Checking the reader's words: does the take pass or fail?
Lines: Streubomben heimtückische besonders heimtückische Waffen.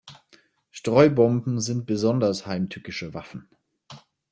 fail